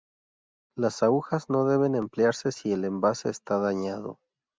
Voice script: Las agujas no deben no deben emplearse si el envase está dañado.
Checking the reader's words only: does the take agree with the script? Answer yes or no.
no